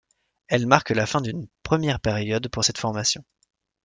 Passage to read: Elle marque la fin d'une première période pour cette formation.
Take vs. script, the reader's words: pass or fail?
pass